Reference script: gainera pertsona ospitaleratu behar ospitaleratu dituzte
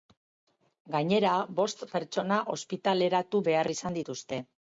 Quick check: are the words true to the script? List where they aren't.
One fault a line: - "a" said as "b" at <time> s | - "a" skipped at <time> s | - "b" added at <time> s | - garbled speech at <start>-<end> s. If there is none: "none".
- "bost" added at 1.6 s
- "ospitaleratu" said as "izan" at 3.7 s